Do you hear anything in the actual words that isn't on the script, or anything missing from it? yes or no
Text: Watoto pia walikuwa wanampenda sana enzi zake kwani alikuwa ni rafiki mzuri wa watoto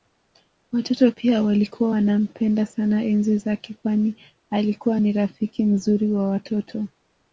no